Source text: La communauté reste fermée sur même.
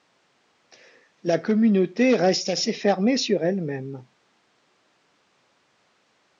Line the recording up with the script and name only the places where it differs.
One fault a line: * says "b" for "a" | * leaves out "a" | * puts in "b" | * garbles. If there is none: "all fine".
* puts in "assez"
* puts in "elle"